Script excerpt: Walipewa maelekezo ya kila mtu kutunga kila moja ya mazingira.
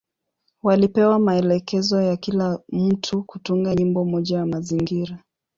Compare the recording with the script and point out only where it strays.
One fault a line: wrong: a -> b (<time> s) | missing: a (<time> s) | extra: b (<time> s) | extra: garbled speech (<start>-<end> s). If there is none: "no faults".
wrong: kila -> nyimbo (3.7 s)